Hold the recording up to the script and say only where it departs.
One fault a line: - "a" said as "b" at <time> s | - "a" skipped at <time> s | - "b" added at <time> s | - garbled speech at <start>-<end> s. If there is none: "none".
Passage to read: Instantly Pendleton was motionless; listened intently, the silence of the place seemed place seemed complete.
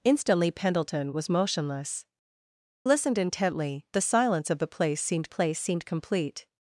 none